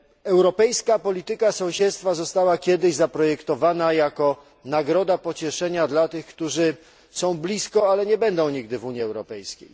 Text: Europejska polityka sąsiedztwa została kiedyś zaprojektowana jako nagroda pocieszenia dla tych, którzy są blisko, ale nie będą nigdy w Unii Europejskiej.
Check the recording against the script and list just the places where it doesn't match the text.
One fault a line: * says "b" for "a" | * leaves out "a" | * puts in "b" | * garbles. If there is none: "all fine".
all fine